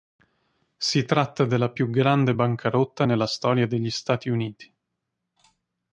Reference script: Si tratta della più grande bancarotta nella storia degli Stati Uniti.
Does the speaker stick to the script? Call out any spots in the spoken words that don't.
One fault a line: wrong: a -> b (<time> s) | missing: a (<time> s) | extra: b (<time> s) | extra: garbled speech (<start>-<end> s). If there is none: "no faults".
no faults